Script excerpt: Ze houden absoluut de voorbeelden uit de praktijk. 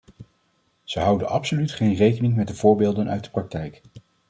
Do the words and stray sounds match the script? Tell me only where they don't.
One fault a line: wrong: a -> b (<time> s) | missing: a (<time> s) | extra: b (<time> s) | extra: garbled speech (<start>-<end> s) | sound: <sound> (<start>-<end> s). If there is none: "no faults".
extra: geen rekening met (1.7 s)